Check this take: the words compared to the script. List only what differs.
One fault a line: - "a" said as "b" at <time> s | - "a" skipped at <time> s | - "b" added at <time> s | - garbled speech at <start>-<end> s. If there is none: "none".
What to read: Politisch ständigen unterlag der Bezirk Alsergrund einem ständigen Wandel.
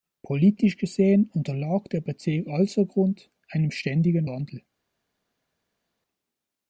- "ständigen" said as "gesehen" at 0.8 s